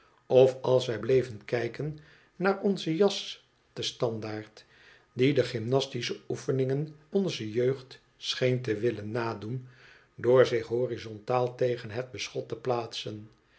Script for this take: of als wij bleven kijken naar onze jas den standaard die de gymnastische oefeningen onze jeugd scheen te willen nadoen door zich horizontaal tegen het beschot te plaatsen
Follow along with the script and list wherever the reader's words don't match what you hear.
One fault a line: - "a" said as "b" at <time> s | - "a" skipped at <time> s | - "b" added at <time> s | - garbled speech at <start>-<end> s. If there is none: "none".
none